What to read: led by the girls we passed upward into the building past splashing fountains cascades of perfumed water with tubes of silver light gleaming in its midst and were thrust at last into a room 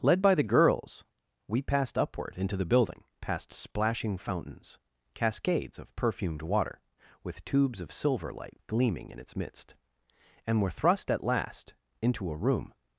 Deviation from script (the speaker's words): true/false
false